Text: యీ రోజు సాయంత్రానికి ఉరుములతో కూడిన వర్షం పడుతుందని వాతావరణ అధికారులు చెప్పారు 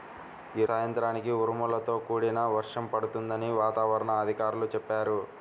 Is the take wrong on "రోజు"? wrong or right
wrong